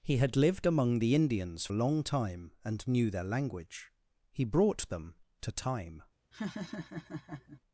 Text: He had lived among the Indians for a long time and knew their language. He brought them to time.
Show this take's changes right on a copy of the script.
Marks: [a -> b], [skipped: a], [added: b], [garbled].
He had lived among the Indians [skipped: for] a long time and knew their language. He brought them to time.